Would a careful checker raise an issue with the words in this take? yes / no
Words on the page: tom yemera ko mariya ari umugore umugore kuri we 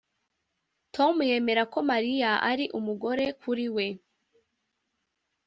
yes